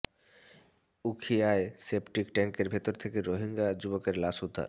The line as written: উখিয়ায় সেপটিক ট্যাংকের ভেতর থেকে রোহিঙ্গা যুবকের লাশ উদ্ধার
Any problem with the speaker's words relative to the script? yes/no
no